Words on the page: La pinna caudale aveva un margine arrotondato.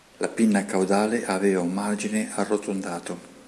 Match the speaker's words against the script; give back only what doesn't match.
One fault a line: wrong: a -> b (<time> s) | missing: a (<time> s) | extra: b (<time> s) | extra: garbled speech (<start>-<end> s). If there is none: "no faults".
no faults